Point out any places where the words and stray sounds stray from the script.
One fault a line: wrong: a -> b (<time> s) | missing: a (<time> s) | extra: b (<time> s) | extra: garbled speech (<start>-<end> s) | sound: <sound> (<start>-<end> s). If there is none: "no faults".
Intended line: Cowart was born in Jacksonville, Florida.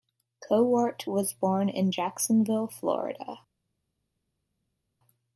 no faults